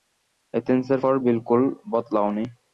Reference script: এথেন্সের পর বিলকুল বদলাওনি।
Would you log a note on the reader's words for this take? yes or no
no